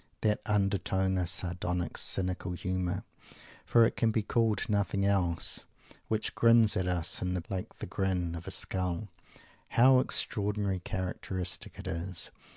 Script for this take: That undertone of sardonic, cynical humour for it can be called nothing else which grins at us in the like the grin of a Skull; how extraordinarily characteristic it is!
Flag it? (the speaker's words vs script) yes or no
no